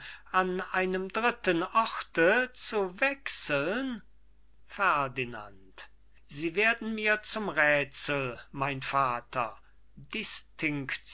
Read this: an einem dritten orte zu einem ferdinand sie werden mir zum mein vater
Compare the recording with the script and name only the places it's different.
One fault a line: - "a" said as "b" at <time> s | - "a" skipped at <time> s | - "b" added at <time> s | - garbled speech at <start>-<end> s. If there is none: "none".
- "einem" said as "wechseln" at 3.0 s
- "räthsel" added at 7.5 s